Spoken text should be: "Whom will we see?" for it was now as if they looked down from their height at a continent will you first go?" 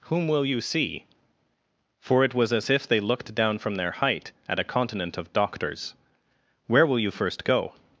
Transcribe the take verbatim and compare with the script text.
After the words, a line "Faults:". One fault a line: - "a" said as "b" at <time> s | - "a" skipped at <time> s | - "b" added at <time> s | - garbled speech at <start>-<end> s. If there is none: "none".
"Whom will you see?" for it was as if they looked down from their height at a continent of doctors. "Where will you first go?"
Faults:
- "we" said as "you" at 0.5 s
- "now" skipped at 2.5 s
- "of doctors Where" added at 5.2 s